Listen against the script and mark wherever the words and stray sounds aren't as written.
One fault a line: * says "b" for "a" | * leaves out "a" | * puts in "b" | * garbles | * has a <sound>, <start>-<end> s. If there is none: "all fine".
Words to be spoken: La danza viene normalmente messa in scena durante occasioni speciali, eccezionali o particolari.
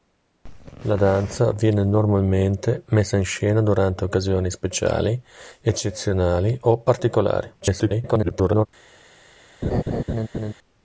* garbles
* has a laugh, 9.6-10.5 s